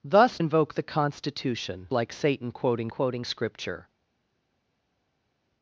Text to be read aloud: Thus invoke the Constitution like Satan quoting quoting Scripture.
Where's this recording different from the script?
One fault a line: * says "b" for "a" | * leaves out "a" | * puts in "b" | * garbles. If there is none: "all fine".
all fine